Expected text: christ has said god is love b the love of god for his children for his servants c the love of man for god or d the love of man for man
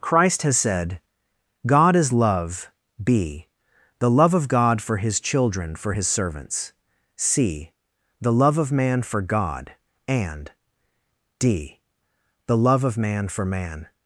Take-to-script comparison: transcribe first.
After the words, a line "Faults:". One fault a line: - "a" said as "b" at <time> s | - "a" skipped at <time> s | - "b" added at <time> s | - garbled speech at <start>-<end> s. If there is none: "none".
christ has said god is love b the love of god for his children for his servants c the love of man for god and d the love of man for man
Faults:
- "or" said as "and" at 10.1 s